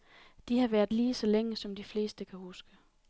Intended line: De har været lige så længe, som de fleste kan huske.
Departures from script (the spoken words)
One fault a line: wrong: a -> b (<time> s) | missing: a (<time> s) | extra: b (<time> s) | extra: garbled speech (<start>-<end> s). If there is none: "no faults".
no faults